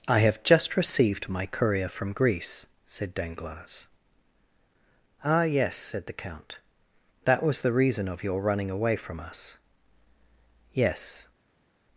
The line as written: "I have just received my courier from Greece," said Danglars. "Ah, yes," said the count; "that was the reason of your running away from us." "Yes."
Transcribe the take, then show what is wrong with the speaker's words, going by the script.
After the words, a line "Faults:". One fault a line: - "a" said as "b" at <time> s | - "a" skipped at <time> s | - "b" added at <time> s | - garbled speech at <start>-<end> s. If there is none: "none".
"I have just received my courier from Greece," said Danglars. "Ah, yes," said the count; "that was the reason of your running away from us." "Yes."
Faults:
none